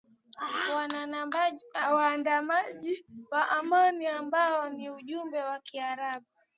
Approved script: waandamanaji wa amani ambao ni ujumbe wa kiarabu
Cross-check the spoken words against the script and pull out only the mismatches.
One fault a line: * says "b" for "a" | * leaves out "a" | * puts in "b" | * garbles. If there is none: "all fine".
all fine